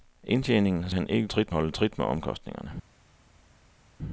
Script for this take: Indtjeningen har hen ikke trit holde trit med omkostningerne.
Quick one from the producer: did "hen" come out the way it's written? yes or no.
yes